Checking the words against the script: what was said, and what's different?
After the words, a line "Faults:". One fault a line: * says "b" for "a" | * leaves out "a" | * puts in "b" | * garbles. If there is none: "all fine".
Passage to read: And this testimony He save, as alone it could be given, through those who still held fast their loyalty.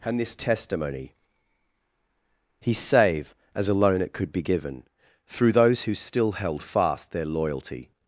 And this testimony He save, as alone it could be given, through those who still held fast their loyalty.
Faults:
all fine